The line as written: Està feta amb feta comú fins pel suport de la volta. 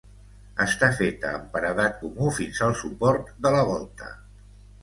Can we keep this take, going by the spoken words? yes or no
no